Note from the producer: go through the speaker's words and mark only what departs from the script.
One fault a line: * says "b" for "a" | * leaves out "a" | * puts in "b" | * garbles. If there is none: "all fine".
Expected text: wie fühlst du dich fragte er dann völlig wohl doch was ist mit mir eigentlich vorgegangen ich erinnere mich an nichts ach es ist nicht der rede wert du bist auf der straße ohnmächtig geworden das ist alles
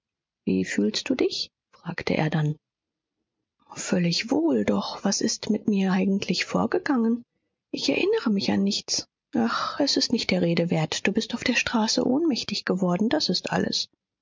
all fine